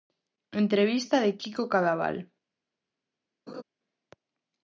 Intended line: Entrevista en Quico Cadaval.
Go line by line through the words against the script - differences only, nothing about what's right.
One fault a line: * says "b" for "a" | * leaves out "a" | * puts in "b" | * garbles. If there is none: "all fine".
* says "de" for "en"